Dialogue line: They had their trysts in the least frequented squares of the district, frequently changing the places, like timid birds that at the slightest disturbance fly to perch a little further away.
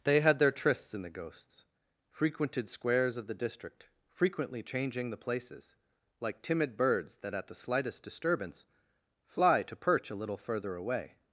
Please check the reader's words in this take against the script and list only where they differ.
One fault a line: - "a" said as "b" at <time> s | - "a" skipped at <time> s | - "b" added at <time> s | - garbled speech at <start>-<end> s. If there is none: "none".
- "least" said as "ghosts" at 1.1 s